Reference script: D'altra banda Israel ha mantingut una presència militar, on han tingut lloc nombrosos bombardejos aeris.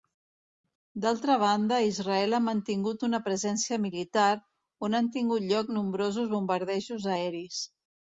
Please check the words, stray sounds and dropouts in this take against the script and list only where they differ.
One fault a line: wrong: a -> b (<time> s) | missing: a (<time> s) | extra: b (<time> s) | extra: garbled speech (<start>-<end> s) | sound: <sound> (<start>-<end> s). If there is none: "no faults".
no faults